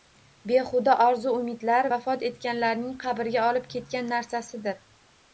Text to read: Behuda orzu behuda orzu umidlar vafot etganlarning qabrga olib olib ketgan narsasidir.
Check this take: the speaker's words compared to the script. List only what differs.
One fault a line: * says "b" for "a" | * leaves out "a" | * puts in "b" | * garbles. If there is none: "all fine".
* leaves out "behuda orzu"
* leaves out "olib"